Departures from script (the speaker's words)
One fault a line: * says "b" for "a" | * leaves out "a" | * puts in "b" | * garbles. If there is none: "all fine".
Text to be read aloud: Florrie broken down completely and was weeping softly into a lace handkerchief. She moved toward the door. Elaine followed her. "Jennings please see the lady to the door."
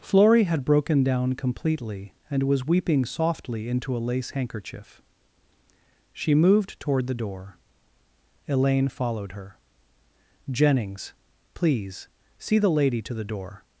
* puts in "had"